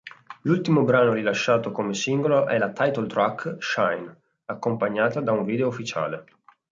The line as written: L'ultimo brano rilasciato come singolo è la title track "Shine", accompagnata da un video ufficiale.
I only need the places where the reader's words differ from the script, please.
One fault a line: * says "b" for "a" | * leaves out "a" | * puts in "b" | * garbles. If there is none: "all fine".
all fine